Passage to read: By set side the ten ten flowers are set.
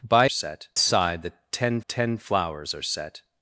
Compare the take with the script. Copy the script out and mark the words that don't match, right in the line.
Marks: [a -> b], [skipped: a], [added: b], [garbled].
By set side the ten ten flowers are set.